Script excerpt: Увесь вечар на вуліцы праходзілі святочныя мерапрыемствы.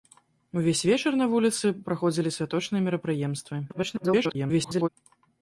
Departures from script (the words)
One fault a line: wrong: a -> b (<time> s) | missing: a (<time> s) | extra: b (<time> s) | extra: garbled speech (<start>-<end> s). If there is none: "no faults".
extra: garbled speech (3.7-4.9 s)